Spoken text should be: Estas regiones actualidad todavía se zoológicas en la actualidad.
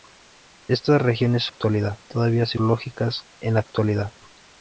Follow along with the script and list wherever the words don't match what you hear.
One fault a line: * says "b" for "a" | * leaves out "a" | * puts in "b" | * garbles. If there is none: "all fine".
all fine